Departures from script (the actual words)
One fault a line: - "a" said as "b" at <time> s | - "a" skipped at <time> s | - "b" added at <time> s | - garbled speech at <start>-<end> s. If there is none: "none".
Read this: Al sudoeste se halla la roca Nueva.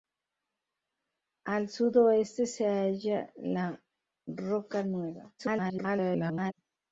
- garbled speech at 5.4-6.5 s